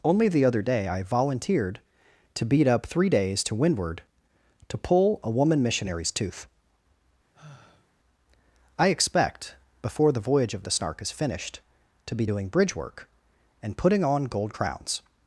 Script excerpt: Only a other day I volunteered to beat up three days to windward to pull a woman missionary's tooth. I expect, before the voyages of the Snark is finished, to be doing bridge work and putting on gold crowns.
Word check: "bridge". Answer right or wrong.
right